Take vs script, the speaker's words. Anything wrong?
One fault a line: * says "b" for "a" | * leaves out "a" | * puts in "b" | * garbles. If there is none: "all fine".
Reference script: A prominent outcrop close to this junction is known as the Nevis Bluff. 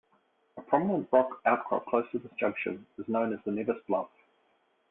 * puts in "rock"